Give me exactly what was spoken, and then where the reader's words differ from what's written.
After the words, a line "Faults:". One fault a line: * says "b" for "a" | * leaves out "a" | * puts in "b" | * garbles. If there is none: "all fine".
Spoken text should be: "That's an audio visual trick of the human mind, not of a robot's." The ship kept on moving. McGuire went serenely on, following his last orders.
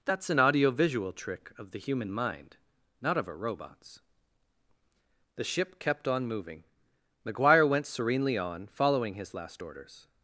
"That's an audio visual trick of the human mind, not of a robot's." The ship kept on moving. McGuire went serenely on, following his last orders.
Faults:
all fine